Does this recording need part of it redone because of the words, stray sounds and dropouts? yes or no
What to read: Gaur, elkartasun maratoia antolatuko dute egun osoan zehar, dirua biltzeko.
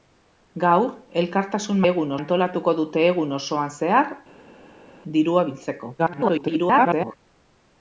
yes